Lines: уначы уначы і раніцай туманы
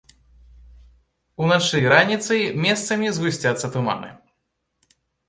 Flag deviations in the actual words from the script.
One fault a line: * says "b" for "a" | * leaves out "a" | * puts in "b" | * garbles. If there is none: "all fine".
* leaves out "уначы"
* puts in "месцамі згусцяцца"